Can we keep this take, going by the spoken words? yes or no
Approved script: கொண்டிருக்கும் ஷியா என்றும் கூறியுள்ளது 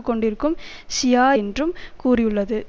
yes